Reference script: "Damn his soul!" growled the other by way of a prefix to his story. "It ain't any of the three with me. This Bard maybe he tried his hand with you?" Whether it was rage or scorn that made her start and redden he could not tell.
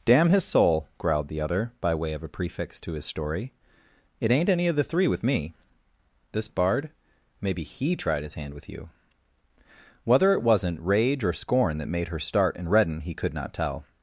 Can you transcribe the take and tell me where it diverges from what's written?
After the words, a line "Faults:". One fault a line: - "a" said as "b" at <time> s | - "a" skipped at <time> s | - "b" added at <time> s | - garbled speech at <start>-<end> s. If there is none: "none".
"Damn his soul!" growled the other by way of a prefix to his story. "It ain't any of the three with me. This Bard maybe he tried his hand with you?" Whether it wasn't rage or scorn that made her start and redden he could not tell.
Faults:
- "was" said as "wasn't" at 10.4 s